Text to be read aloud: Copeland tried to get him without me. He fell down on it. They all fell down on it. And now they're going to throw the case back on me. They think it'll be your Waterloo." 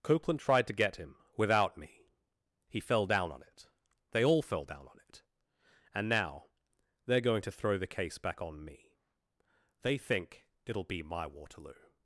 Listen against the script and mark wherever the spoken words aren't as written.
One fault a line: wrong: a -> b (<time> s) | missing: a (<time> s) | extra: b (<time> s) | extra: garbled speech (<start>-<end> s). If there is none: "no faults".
wrong: your -> my (11.0 s)